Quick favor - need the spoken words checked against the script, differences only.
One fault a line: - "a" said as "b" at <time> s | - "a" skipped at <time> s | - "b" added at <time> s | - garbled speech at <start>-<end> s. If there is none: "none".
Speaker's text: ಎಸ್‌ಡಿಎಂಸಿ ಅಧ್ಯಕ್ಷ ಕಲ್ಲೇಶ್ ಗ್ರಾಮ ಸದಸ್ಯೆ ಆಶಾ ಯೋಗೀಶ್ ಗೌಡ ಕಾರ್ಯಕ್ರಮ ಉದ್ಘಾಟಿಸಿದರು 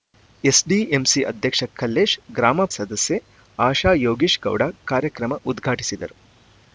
none